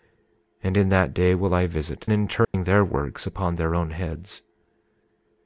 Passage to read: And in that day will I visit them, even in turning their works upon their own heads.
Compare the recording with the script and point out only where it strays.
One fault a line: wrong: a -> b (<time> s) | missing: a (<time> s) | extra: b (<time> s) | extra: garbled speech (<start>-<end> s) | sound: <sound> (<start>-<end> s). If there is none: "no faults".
missing: them even (2.1 s)
sound: dropout (2.4-2.5 s)